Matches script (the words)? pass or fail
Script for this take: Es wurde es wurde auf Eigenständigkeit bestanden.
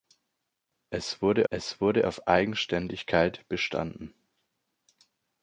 pass